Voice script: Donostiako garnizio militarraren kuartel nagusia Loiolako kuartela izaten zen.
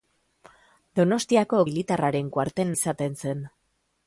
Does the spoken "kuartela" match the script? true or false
false